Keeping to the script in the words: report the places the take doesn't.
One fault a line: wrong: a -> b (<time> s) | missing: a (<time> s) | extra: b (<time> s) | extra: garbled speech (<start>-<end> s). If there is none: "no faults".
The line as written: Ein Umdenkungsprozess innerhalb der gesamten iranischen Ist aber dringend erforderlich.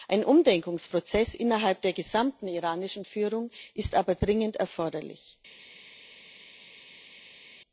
extra: Führung (3.0 s)